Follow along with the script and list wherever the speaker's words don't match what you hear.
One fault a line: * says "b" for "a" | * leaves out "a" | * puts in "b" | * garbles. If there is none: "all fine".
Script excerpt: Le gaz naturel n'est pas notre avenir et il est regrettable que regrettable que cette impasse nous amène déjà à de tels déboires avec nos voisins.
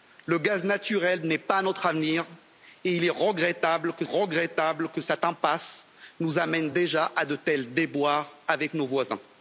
all fine